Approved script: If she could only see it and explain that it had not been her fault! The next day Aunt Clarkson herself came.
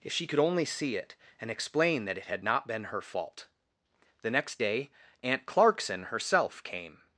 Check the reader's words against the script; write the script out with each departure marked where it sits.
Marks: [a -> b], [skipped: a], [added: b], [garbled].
If she could only see it and explain that it had not been her fault! The next day Aunt Clarkson herself came.